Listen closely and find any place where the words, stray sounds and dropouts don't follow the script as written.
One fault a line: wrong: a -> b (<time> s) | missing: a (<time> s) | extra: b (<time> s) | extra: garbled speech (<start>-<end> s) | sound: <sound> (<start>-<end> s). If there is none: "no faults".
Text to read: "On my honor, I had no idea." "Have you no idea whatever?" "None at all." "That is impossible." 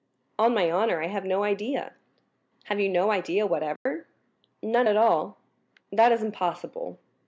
wrong: had -> have (1.1 s)
sound: dropout (3.8-3.9 s)